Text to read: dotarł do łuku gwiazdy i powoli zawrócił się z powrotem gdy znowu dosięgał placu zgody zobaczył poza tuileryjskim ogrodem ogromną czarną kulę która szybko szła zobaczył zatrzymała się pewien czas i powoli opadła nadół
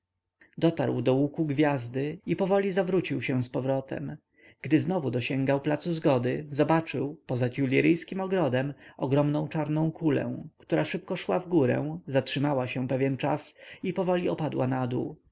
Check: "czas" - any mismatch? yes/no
no